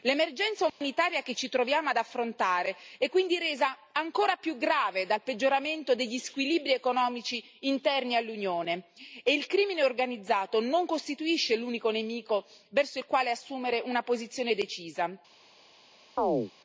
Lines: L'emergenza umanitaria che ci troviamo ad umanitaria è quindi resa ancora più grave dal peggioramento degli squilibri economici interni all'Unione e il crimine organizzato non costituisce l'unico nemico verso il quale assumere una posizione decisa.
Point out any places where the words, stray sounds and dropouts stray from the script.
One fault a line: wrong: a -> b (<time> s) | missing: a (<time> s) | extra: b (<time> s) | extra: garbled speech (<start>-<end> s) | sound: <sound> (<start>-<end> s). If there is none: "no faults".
sound: dropout (0.7-0.8 s)
wrong: umanitaria -> affrontare (2.0 s)
sound: chirp (16.2-16.5 s)